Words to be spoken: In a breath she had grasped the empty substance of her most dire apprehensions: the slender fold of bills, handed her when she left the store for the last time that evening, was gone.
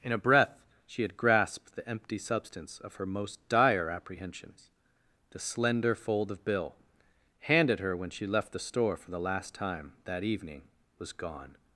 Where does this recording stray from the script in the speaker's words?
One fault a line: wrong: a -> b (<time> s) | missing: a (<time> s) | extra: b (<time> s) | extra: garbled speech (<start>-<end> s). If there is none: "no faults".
wrong: bills -> bill (6.4 s)